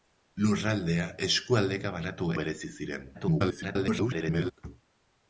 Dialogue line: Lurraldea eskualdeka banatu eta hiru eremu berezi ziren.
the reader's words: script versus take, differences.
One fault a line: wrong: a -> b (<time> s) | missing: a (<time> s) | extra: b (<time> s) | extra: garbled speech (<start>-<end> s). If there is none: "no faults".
missing: eta hiru eremu (2.3 s)
extra: garbled speech (3.1-4.5 s)